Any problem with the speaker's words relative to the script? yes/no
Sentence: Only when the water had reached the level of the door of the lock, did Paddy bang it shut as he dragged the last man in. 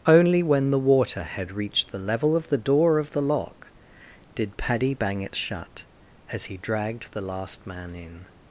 no